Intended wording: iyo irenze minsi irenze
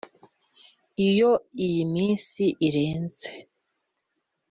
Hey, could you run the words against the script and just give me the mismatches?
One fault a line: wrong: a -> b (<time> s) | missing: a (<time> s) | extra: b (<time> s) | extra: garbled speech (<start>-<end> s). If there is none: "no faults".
wrong: irenze -> iyi (1.6 s)